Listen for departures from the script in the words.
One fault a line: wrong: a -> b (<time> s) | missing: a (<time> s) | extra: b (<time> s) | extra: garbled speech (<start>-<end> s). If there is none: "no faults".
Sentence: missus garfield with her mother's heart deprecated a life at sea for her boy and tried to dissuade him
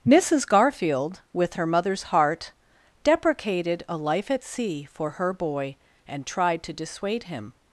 no faults